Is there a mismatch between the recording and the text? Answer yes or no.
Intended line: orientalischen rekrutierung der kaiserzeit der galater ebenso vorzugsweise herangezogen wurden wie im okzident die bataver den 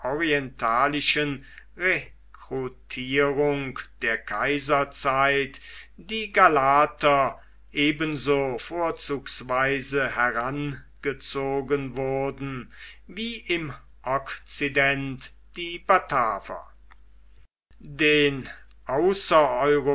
yes